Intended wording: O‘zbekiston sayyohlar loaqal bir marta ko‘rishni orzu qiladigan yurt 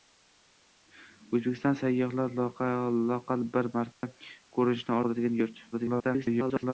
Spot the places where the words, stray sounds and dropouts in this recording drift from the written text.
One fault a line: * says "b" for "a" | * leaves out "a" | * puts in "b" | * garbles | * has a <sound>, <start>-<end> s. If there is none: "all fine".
* has a dropout, 3.9-4.0 s
* leaves out "orzu"
* garbles